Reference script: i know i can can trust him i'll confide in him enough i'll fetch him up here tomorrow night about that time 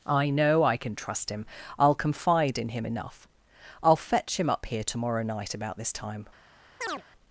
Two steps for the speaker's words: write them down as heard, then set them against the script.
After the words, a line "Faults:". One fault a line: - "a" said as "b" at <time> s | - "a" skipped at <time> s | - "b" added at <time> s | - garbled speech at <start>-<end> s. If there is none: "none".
i know i can trust him i'll confide in him enough i'll fetch him up here tomorrow night about this time
Faults:
- "can" skipped at 0.9 s
- "that" said as "this" at 5.8 s